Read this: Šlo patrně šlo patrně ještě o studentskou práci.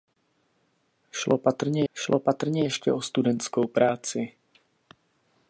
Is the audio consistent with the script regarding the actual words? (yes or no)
yes